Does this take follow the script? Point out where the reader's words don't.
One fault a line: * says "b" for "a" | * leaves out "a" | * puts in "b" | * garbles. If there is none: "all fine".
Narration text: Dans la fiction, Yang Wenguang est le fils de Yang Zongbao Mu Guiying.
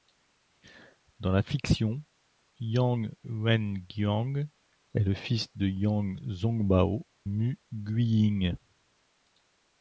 all fine